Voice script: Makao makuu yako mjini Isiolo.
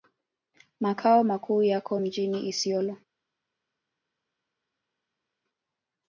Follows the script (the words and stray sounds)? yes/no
yes